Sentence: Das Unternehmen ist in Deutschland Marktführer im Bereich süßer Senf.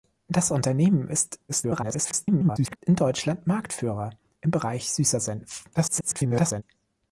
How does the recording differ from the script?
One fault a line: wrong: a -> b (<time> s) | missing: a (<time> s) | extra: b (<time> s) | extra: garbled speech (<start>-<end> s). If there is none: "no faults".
extra: garbled speech (1.5-2.8 s)
extra: garbled speech (5.7-6.6 s)